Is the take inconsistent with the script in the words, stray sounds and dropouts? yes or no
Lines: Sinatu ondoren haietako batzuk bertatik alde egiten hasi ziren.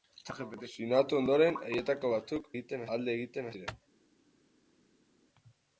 yes